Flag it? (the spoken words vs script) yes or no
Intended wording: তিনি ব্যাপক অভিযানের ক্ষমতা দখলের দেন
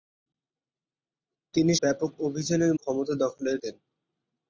no